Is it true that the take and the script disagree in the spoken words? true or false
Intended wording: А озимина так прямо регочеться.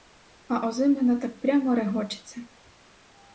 false